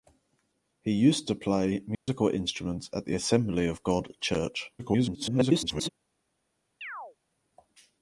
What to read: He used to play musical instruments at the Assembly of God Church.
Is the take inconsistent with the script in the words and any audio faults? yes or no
yes